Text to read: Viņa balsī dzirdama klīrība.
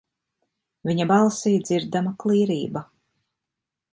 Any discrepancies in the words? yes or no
no